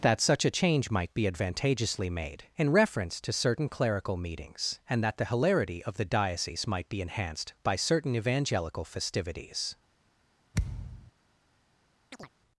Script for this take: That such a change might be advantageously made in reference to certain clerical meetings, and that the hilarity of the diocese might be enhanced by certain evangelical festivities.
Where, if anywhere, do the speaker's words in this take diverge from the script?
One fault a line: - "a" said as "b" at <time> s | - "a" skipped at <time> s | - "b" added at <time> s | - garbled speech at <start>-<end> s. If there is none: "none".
none